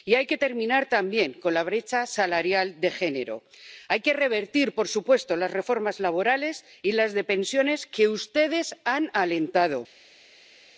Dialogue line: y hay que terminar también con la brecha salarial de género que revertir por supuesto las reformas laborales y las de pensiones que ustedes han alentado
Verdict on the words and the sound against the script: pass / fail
fail